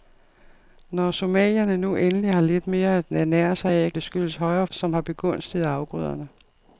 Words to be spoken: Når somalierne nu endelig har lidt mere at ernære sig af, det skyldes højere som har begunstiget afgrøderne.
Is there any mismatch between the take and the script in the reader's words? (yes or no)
no